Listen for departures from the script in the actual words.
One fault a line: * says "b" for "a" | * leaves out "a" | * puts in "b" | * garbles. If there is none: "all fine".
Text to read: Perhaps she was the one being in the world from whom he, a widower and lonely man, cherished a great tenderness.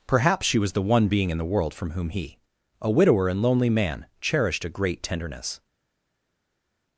all fine